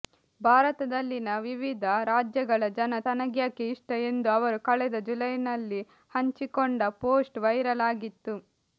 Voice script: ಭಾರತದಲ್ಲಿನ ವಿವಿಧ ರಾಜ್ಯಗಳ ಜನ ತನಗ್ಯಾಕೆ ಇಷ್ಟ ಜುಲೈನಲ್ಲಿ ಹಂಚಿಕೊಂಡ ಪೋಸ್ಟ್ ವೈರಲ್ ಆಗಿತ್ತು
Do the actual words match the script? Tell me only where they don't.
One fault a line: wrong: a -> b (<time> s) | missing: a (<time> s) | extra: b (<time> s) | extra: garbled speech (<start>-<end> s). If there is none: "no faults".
extra: ಎಂದು ಅವರು ಕಳೆದ (4.0 s)